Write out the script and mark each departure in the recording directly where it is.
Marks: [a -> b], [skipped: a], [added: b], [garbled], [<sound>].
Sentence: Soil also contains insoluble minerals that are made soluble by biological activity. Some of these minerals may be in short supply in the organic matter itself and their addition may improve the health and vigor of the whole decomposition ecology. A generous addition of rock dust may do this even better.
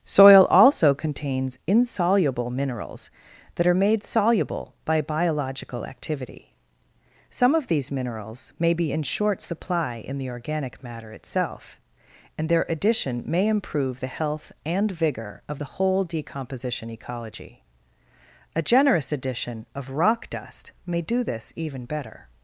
Soil also contains insoluble minerals that are made soluble by biological activity. Some of these minerals may be in short supply in the organic matter itself and their addition may improve the health and vigor of the whole decomposition ecology. A generous addition of rock dust may do this even better.